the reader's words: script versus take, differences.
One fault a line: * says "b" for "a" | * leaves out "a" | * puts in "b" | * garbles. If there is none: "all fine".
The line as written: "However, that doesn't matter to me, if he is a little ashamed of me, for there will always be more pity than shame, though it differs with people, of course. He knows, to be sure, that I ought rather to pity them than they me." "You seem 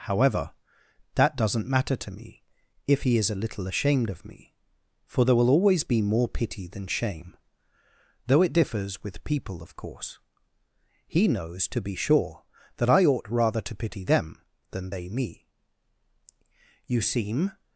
all fine